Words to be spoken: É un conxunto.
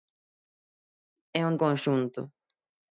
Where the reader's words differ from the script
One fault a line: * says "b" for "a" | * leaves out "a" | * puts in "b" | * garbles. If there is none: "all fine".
all fine